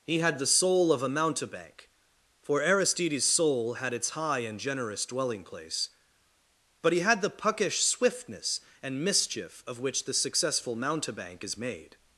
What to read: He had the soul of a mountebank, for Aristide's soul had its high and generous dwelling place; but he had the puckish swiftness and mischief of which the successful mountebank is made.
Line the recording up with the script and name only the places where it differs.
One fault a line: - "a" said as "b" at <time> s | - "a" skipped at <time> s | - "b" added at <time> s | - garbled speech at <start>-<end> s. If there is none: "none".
none